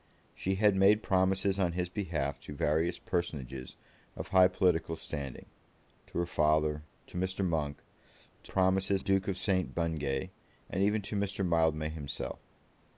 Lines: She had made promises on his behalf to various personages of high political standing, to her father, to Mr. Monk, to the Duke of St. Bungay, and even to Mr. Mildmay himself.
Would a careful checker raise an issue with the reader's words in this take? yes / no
yes